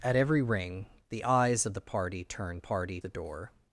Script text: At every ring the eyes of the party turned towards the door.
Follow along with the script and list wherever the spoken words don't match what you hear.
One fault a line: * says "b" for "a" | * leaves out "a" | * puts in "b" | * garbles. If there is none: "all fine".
* says "party" for "towards"